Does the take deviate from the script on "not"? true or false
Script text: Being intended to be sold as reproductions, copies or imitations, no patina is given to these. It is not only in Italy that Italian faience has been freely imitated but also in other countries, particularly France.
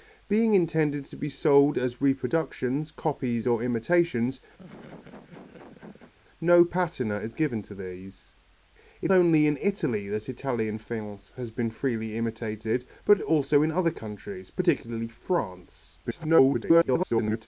true